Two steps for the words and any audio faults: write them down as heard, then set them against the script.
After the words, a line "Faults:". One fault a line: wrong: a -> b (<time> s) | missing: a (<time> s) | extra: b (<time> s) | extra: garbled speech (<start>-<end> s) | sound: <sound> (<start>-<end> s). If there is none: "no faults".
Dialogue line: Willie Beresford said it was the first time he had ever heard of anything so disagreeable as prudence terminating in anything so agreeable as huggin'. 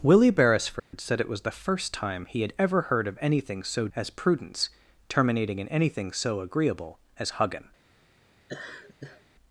Willie Beresford said it was the first time he had ever heard of anything so as prudence terminating in anything so agreeable as huggin'.
Faults:
sound: dropout (0.8-0.9 s)
missing: disagreeable (3.9 s)
sound: laugh (8.5-9.2 s)